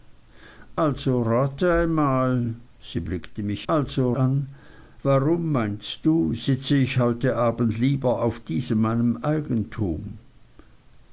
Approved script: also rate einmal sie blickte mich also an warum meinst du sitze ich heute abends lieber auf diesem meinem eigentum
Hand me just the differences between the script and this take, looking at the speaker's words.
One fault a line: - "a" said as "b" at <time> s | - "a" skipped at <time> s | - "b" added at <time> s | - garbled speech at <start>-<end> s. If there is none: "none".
none